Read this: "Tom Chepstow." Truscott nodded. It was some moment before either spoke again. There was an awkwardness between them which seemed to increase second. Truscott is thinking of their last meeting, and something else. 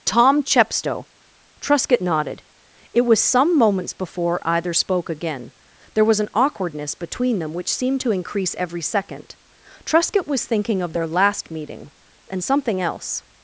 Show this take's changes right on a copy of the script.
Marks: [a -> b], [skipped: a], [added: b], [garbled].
"Tom Chepstow." Truscott nodded. It was some [moment -> moments] before either spoke again. There was an awkwardness between them which seemed to increase [added: every] second. Truscott [is -> was] thinking of their last meeting, and something else.